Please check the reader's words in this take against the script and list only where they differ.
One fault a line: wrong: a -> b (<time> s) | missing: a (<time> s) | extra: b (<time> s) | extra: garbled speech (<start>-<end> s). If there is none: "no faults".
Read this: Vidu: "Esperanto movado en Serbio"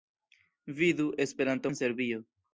missing: movado (1.7 s)